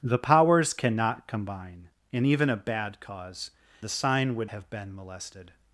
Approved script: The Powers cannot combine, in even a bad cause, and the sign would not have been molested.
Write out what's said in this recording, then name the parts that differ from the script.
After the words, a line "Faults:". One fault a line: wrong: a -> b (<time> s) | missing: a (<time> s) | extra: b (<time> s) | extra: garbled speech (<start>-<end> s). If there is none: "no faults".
The Powers cannot combine, in even a bad cause, the sign would have been molested.
Faults:
missing: and (3.5 s)
missing: not (4.5 s)